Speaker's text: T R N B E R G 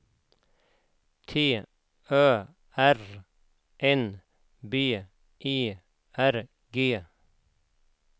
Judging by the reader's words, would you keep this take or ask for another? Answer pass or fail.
fail